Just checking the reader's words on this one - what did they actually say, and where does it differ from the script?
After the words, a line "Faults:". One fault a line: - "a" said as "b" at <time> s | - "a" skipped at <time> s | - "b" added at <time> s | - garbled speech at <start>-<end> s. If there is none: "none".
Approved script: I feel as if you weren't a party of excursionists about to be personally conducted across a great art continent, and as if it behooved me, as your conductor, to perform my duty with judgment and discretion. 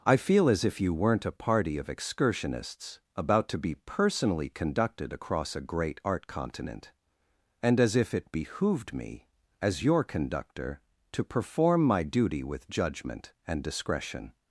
I feel as if you weren't a party of excursionists about to be personally conducted across a great art continent, and as if it behooved me, as your conductor, to perform my duty with judgment and discretion.
Faults:
none